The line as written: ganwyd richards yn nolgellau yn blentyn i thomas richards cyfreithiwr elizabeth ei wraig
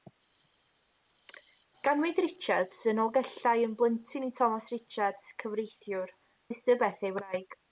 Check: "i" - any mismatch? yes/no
no